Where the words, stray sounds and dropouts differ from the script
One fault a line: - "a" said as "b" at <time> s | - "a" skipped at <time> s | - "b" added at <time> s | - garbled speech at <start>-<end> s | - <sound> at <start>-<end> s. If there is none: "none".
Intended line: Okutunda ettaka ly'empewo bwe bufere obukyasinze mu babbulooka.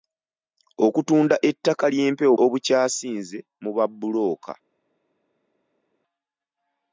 - "bwe bufere" skipped at 2.3 s